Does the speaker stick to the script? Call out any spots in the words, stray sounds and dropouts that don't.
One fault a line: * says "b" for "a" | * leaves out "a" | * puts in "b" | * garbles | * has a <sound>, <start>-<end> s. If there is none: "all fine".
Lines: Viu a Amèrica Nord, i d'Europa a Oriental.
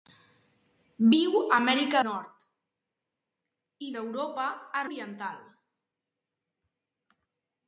all fine